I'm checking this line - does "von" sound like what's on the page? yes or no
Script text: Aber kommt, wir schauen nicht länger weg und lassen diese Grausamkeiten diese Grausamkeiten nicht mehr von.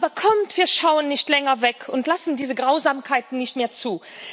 no